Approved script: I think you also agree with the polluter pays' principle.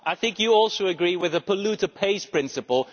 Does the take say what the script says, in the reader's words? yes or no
yes